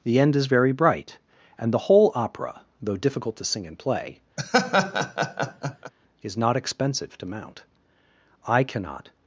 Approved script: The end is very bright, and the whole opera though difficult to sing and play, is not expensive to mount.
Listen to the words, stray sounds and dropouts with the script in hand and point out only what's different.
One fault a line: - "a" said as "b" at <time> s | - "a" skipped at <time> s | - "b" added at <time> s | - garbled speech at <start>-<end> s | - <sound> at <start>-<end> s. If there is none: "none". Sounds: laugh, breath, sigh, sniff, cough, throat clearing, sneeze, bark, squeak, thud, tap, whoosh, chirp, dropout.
- laugh at 4.4-5.9 s
- "I cannot" added at 8.5 s